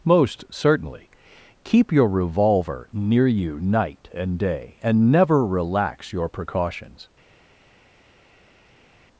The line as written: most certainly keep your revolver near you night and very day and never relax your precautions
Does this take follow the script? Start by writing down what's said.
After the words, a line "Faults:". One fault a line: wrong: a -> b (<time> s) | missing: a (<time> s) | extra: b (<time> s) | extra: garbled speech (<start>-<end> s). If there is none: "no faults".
most certainly keep your revolver near you night and day and never relax your precautions
Faults:
missing: very (4.4 s)